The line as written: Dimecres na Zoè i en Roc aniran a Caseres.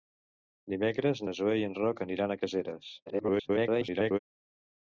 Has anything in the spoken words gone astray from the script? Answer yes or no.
yes